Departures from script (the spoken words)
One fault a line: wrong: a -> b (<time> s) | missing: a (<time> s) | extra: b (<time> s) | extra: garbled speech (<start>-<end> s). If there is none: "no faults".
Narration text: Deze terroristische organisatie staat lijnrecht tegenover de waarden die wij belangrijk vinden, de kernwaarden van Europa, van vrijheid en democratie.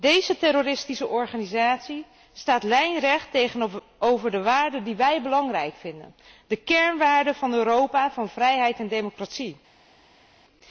no faults